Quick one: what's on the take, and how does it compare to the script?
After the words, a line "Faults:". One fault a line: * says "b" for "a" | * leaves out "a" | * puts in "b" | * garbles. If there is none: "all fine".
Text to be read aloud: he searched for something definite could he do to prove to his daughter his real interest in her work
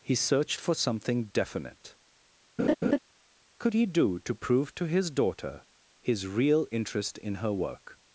he searched for something definite could he do to prove to his daughter his real interest in her work
Faults:
all fine